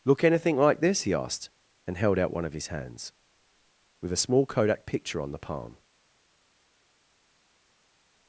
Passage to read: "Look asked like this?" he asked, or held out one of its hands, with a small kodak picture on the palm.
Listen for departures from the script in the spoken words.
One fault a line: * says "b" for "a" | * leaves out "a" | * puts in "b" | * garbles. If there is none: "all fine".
* says "anything" for "asked"
* says "and" for "or"
* says "his" for "its"